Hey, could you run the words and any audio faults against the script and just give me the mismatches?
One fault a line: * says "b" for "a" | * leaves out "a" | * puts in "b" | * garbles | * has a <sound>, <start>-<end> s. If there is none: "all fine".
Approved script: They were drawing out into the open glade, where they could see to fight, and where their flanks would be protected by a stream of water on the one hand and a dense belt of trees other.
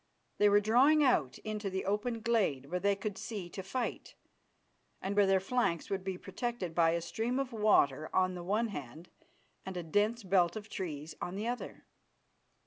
* puts in "on the"